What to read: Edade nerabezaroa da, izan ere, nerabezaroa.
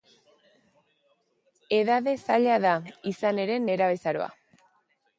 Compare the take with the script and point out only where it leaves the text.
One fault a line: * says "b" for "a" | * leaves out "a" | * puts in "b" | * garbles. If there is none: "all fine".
* says "zaila" for "nerabezaroa"